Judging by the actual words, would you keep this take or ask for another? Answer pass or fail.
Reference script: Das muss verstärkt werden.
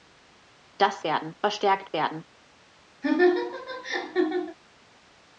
fail